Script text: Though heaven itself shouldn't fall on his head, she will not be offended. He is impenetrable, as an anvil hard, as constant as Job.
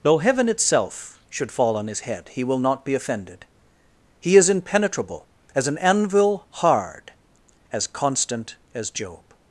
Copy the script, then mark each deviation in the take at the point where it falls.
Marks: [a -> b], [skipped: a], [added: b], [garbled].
Though heaven itself [shouldn't -> should] fall on his head, [she -> he] will not be offended. He is impenetrable, as an anvil hard, as constant as Job.